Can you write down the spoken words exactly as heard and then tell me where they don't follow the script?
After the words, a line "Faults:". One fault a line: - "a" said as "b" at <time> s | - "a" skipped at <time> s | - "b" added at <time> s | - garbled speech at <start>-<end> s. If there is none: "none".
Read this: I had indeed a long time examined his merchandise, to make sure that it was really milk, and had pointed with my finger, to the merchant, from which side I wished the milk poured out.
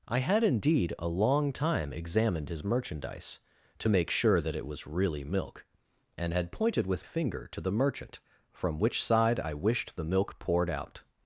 I had indeed a long time examined his merchandise, to make sure that it was really milk, and had pointed with finger, to the merchant, from which side I wished the milk poured out.
Faults:
- "my" skipped at 7.0 s